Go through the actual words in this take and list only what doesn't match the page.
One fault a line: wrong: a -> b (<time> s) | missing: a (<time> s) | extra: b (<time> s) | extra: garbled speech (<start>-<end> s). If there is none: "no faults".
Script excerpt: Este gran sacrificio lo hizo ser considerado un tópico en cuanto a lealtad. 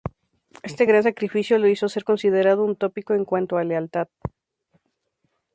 no faults